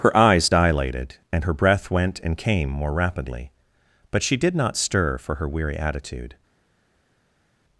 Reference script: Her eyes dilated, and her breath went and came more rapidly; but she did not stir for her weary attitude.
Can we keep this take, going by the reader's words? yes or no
yes